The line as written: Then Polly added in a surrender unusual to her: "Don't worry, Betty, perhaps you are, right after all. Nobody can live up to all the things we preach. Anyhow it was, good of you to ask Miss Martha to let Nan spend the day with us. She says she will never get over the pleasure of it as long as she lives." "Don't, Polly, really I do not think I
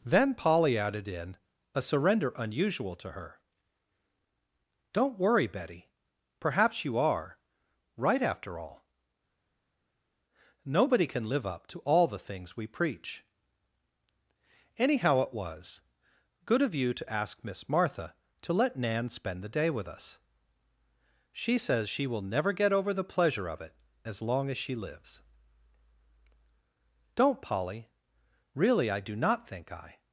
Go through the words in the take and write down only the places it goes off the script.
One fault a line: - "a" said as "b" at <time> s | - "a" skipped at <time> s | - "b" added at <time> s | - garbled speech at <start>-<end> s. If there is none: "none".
none